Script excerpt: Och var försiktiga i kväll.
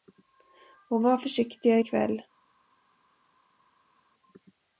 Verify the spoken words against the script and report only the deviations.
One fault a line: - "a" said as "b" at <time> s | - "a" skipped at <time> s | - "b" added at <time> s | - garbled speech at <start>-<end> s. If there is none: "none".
none